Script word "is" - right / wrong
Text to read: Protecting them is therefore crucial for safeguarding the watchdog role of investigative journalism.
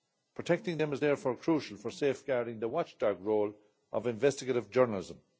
right